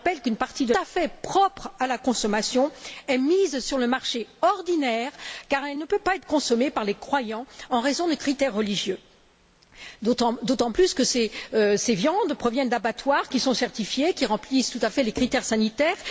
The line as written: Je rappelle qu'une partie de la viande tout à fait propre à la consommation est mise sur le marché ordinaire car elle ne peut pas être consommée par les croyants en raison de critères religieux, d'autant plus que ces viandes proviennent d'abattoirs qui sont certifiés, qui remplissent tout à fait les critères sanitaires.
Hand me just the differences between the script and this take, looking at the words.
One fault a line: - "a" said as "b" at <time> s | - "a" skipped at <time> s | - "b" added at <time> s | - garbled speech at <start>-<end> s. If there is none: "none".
- "la viande tout" skipped at 0.7 s